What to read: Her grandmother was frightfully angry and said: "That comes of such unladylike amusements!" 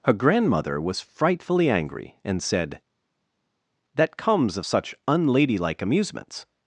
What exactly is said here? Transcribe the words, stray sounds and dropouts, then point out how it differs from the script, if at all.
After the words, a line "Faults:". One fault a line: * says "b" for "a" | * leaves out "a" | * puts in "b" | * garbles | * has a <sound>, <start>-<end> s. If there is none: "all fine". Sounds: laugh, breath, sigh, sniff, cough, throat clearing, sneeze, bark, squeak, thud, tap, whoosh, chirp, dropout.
Her grandmother was frightfully angry and said: "That comes of such unladylike amusements!"
Faults:
all fine